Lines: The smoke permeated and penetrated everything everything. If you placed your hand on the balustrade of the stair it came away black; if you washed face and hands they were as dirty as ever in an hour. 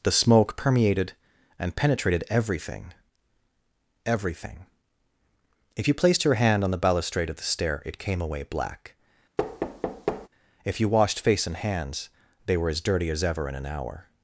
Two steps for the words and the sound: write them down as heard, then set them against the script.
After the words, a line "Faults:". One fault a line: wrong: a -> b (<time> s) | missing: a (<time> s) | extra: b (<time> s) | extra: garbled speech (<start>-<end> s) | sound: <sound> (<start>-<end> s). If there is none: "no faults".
The smoke permeated and penetrated everything everything. If you placed your hand on the balustrade of the stair it came away black; if you washed face and hands they were as dirty as ever in an hour.
Faults:
sound: thud (9.4-10.3 s)